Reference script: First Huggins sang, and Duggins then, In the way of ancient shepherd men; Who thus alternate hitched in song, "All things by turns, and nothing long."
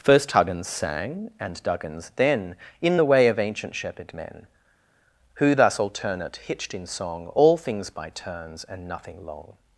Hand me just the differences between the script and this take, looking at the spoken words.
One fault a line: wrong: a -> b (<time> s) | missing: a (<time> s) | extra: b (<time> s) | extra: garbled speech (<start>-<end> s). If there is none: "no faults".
no faults